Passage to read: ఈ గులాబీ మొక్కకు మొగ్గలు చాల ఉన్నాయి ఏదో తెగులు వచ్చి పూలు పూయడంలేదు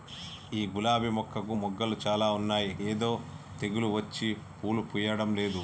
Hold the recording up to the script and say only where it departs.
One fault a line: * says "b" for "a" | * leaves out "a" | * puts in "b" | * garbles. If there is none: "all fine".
all fine